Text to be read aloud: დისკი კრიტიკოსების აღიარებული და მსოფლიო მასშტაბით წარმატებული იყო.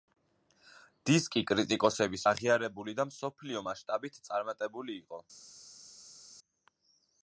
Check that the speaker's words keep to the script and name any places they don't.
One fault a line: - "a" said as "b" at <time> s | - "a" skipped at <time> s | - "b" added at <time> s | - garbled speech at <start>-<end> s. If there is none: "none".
none